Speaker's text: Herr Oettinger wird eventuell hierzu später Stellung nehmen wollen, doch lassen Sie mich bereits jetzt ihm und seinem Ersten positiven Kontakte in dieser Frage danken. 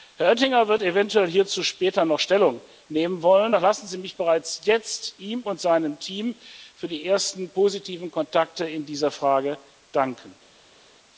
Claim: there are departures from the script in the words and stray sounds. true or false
true